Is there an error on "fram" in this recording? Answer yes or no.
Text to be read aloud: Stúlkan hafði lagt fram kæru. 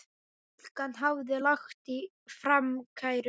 no